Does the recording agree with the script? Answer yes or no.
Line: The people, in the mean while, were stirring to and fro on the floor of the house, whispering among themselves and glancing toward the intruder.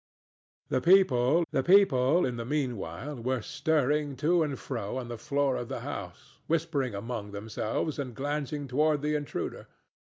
no